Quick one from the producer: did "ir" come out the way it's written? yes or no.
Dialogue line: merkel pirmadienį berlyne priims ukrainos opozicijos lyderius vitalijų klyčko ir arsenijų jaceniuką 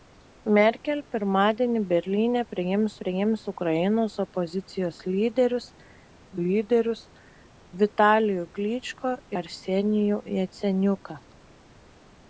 no